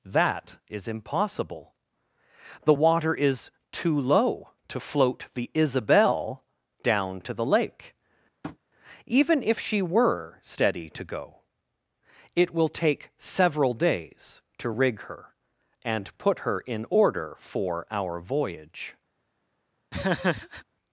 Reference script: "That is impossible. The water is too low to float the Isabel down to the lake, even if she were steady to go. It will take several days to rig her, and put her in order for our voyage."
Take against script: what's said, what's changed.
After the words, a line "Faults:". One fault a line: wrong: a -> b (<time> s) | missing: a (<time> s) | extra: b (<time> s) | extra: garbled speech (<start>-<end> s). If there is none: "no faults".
"That is impossible. The water is too low to float the Isabel down to the lake, even if she were steady to go. It will take several days to rig her, and put her in order for our voyage."
Faults:
no faults